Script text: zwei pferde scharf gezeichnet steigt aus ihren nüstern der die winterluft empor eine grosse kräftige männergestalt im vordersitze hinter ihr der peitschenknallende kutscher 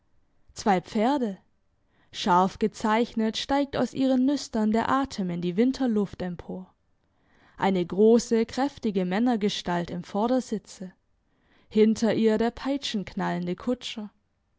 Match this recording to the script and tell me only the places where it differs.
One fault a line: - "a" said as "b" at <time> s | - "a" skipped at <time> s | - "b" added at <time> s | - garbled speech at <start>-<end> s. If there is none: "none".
- "atem in" added at 4.9 s